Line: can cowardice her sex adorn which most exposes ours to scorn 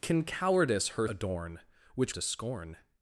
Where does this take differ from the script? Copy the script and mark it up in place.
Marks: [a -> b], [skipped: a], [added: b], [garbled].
can cowardice her [skipped: sex] adorn which [skipped: most exposes ours] to scorn